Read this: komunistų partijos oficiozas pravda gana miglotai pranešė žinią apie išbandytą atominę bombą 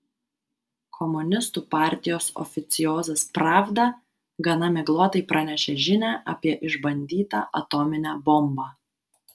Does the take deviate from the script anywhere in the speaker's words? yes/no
no